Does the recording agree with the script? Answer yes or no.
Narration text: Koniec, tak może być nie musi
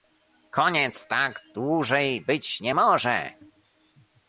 no